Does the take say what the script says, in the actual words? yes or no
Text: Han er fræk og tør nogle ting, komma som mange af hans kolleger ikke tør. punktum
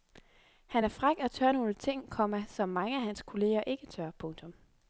yes